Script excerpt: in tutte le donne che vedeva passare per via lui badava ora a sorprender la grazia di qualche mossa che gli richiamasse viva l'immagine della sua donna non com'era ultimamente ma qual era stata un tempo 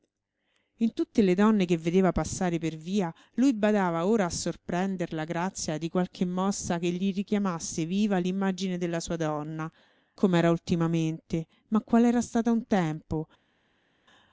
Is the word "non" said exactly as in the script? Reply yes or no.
no